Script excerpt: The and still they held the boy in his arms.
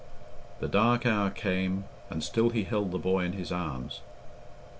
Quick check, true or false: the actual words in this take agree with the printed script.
false